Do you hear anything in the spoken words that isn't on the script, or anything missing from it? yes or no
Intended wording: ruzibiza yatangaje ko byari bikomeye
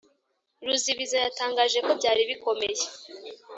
no